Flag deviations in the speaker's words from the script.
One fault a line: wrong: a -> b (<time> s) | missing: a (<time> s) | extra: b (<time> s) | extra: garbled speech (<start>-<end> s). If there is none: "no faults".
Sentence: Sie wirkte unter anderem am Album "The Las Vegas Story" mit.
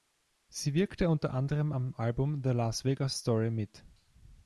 no faults